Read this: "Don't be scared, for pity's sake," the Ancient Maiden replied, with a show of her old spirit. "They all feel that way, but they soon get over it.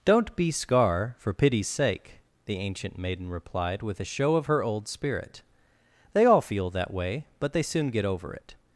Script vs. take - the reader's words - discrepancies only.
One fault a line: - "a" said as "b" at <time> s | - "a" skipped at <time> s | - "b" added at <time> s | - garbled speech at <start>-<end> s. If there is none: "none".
- "scared" said as "scar" at 0.5 s